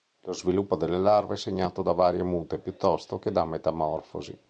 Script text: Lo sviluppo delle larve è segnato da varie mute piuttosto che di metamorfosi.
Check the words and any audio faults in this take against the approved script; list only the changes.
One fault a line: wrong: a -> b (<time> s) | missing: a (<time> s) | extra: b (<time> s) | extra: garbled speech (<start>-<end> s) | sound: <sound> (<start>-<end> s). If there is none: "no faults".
wrong: di -> da (3.3 s)